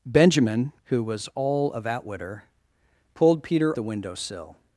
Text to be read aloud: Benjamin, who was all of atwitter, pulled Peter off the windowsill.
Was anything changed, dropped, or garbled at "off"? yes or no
yes